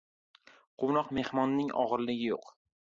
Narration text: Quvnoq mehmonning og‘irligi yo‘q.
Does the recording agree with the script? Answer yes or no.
yes